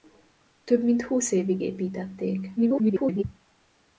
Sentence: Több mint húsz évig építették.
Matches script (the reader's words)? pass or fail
fail